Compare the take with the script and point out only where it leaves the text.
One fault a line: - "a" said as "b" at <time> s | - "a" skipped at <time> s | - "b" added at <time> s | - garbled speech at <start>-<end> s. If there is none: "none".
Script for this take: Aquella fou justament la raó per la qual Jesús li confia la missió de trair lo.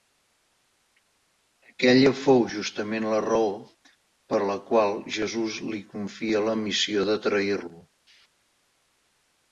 none